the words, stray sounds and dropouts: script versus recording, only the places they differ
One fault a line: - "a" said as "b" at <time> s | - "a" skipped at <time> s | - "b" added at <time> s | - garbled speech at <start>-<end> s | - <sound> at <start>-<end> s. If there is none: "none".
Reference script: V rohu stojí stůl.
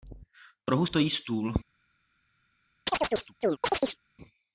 - chirp at 2.9-4.0 s